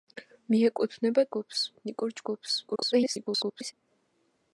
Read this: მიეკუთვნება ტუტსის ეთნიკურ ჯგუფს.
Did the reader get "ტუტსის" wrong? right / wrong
wrong